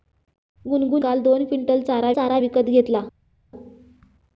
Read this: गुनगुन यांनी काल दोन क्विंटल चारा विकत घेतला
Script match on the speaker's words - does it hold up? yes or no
no